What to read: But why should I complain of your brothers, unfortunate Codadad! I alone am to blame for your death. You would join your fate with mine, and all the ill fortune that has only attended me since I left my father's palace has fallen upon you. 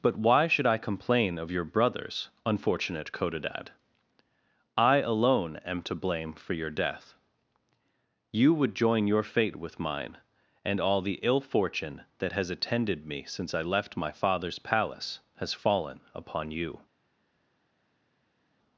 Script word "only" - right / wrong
wrong